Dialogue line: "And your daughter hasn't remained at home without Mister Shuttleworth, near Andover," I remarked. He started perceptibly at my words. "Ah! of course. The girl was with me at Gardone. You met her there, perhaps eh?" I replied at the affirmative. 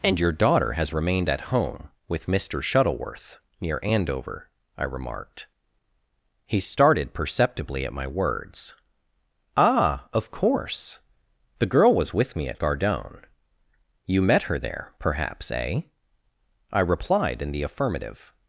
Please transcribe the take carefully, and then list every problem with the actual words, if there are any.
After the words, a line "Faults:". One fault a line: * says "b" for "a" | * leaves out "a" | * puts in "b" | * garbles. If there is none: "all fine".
"And your daughter has remained at home with Mister Shuttleworth, near Andover," I remarked. He started perceptibly at my words. "Ah! of course. The girl was with me at Gardone. You met her there, perhaps eh?" I replied in the affirmative.
Faults:
* says "has" for "hasn't"
* says "with" for "without"
* says "in" for "at"